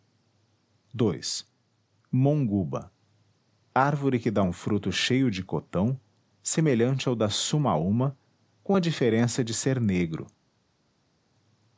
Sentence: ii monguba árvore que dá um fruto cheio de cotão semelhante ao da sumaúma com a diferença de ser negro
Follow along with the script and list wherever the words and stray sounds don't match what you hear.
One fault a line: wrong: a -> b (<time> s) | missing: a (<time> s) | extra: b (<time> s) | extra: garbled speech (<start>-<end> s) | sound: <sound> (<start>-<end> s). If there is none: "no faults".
no faults